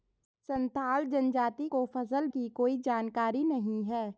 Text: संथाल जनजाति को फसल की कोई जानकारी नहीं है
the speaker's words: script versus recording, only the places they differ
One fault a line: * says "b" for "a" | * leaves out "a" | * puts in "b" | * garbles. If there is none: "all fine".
all fine